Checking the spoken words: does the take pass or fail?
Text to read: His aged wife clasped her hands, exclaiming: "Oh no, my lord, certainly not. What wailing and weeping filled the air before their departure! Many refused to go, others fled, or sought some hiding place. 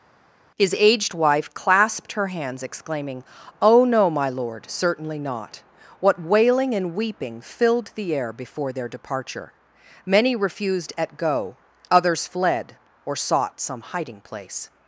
fail